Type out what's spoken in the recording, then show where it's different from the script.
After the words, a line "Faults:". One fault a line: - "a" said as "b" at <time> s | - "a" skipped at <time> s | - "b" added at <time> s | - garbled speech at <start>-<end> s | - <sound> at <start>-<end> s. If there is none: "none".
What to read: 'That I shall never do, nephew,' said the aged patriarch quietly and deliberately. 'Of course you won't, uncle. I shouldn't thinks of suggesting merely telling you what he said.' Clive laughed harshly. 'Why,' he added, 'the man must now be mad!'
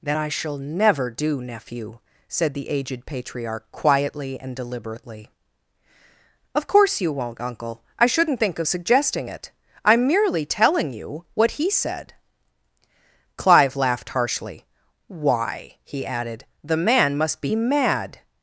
'That I shall never do, nephew,' said the aged patriarch quietly and deliberately. 'Of course you won't, uncle. I shouldn't think of suggesting it. I'm merely telling you what he said.' Clive laughed harshly. 'Why,' he added, 'the man must be mad!'
Faults:
- "thinks" said as "think" at 8.4 s
- "it I'm" added at 9.3 s
- "now" skipped at 17.4 s